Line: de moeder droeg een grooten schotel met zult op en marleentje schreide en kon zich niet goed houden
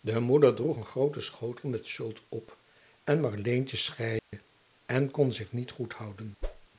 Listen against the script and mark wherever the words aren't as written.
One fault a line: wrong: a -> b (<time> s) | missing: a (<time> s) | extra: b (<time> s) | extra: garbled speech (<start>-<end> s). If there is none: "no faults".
no faults